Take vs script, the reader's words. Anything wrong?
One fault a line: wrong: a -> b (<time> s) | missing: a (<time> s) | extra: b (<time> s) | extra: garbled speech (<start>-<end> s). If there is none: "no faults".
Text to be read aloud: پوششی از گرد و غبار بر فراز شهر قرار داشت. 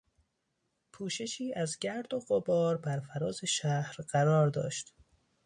no faults